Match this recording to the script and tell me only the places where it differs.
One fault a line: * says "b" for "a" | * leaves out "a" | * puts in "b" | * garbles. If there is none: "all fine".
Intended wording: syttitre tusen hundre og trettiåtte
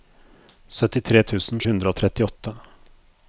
all fine